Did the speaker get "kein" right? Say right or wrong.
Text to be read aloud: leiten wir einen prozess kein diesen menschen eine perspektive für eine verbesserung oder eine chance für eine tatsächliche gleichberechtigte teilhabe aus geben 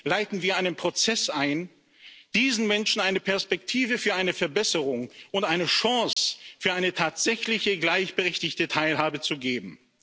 wrong